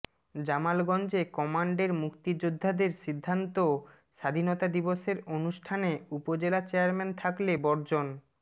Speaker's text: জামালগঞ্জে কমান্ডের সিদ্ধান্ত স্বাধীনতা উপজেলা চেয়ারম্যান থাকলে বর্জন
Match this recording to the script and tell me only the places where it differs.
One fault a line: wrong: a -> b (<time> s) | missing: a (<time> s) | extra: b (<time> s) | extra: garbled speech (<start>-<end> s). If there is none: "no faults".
extra: মুক্তিযোদ্ধাদের (2.0 s)
extra: দিবসের অনুষ্ঠানে (4.7 s)